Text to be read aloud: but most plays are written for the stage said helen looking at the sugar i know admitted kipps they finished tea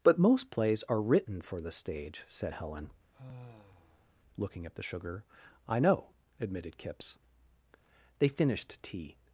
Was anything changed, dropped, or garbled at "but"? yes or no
no